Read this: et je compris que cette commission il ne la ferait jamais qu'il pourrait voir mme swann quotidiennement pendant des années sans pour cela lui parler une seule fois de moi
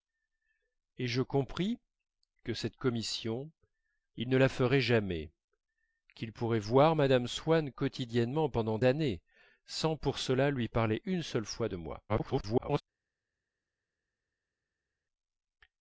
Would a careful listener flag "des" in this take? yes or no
yes